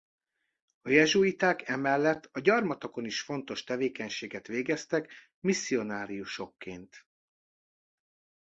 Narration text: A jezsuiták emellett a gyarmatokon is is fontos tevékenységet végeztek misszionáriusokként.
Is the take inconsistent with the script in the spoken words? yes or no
yes